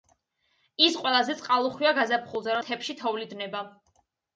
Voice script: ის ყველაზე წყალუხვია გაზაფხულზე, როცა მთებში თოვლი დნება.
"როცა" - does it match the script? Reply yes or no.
no